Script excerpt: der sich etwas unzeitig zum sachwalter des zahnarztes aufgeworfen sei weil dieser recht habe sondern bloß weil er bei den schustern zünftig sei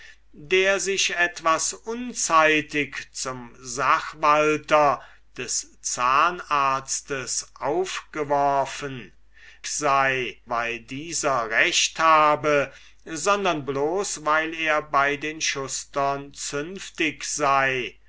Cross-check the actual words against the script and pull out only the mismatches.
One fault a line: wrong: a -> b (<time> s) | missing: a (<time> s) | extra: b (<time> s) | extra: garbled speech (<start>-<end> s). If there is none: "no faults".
no faults